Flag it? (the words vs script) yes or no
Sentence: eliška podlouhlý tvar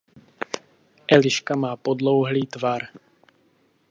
yes